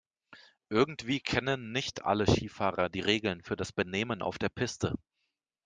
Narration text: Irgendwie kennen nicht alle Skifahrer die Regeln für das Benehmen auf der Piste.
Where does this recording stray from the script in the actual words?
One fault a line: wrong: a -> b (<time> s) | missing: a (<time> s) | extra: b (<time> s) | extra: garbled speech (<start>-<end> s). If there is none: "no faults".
no faults